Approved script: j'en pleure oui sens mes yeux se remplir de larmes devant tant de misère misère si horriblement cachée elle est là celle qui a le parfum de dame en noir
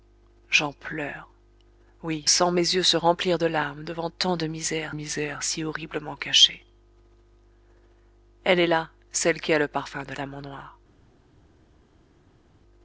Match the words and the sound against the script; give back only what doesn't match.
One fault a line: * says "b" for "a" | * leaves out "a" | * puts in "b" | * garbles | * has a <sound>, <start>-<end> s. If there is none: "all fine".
all fine